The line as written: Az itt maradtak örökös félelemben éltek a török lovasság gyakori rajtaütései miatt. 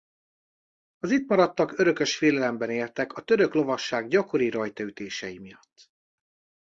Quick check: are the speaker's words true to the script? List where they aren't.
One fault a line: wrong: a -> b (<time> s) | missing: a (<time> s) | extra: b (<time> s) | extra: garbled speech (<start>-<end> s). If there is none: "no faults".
no faults